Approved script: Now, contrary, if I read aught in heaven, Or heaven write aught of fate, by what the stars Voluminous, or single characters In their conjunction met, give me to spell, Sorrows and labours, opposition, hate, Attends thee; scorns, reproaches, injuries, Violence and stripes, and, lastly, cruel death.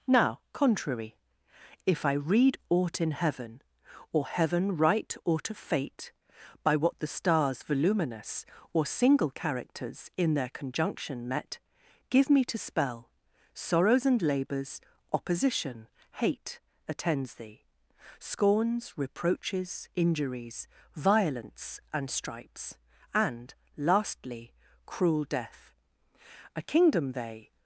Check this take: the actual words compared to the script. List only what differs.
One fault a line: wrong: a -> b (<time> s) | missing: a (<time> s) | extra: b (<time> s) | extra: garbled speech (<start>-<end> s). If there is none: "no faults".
extra: A kingdom they (26.6 s)